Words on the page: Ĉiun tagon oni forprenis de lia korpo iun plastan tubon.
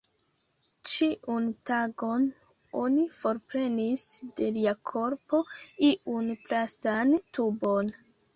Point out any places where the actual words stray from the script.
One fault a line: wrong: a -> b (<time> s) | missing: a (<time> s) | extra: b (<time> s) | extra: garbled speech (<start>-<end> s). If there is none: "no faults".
no faults